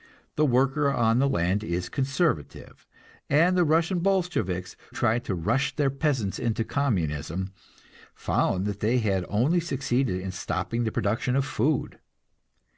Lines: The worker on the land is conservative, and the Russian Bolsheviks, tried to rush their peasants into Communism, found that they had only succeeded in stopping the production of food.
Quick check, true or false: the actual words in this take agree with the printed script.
true